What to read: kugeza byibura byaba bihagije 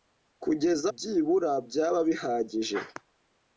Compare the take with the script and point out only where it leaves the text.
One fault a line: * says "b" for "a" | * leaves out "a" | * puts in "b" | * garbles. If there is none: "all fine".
all fine